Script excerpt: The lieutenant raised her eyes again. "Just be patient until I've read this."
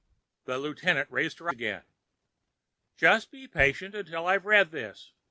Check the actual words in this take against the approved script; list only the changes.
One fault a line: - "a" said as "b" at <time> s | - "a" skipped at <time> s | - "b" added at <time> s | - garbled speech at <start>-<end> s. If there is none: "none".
- "eyes" skipped at 1.5 s